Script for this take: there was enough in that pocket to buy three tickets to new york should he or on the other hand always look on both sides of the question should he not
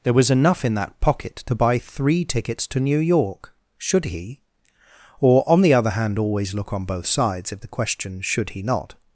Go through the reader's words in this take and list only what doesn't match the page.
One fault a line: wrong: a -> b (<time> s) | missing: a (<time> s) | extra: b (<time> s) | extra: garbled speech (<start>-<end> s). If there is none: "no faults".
wrong: of -> if (7.5 s)